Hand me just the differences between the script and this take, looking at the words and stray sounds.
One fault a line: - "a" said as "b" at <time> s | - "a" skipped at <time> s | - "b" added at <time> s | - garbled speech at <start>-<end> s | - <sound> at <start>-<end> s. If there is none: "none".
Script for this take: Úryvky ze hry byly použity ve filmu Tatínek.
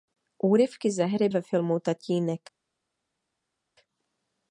- "byly použity" skipped at 1.3 s